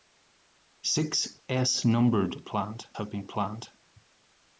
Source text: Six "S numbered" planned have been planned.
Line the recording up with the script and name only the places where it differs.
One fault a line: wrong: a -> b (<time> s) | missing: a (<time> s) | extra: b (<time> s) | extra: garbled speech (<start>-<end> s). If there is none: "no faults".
no faults